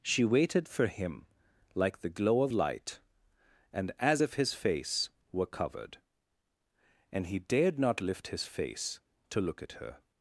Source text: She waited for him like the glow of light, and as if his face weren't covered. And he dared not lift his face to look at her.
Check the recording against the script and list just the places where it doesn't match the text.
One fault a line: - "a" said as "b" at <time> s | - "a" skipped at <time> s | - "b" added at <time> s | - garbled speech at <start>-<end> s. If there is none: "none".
- "weren't" said as "were" at 5.3 s